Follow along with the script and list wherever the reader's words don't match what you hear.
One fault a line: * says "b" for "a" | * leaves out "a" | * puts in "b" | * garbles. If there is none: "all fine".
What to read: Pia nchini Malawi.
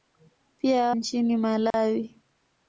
all fine